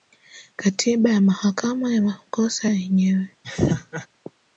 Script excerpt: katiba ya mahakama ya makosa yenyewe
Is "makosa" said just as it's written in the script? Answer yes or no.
yes